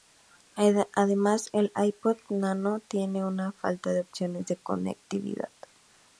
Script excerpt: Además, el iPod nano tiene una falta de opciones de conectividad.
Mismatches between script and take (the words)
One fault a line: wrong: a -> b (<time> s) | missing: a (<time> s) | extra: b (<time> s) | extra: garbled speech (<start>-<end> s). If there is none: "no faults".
no faults